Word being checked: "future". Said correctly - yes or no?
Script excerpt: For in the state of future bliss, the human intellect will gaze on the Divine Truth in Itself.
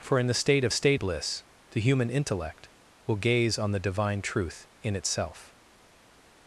no